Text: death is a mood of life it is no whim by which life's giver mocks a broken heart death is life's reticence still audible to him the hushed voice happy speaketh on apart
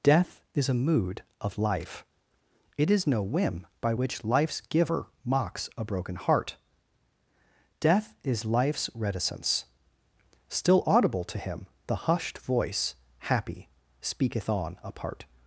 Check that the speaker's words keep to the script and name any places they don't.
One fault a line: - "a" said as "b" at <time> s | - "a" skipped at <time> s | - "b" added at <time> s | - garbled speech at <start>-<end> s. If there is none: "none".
none